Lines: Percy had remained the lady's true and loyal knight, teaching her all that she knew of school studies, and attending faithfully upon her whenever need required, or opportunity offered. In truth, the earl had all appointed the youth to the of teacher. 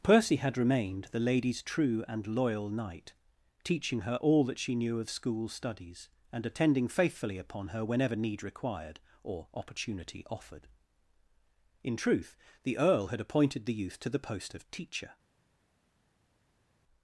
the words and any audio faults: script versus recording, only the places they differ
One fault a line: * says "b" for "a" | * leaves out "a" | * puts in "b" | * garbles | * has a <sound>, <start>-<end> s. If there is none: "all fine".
* leaves out "all"
* puts in "post"